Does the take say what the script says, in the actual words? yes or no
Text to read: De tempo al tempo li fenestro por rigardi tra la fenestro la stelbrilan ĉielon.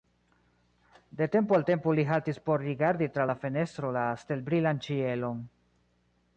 no